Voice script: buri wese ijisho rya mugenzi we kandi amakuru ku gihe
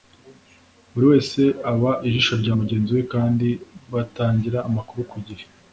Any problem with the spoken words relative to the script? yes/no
yes